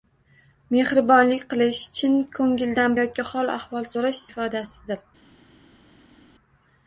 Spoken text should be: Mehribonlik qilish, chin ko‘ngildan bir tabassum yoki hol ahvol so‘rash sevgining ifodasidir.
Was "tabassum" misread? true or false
true